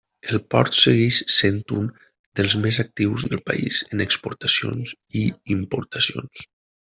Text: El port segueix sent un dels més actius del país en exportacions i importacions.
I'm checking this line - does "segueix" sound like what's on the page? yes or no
yes